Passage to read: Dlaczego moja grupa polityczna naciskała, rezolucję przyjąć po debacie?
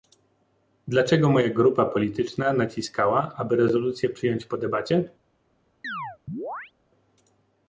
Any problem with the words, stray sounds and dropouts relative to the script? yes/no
yes